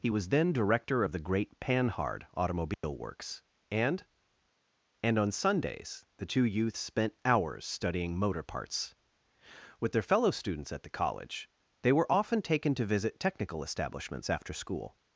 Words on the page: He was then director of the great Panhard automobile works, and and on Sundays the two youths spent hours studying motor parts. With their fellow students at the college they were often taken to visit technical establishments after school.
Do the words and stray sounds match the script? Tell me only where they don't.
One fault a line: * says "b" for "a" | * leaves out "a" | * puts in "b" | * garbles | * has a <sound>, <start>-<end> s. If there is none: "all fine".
* has a dropout, 2.7-2.8 s